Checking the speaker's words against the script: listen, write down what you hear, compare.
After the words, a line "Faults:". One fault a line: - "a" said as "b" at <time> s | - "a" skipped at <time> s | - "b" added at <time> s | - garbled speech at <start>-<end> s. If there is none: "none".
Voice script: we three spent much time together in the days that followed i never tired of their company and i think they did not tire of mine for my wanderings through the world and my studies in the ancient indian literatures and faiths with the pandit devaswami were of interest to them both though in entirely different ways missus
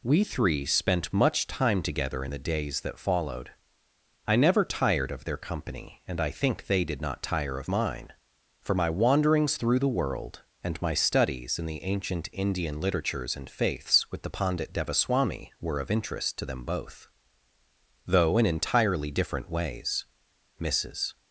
we three spent much time together in the days that followed i never tired of their company and i think they did not tire of mine for my wanderings through the world and my studies in the ancient indian literatures and faiths with the pandit devaswami were of interest to them both though in entirely different ways missus
Faults:
none